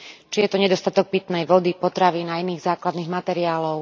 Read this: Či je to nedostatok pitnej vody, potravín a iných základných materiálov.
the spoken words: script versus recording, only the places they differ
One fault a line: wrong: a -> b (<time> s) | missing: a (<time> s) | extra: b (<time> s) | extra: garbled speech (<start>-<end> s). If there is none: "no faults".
no faults